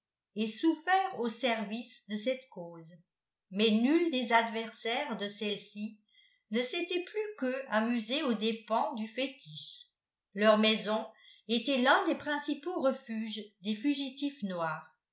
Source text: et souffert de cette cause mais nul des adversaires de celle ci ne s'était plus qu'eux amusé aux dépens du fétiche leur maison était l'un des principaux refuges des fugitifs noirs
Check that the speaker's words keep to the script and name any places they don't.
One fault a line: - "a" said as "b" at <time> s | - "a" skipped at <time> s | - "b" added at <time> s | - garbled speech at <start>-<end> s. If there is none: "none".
- "au service" added at 1.2 s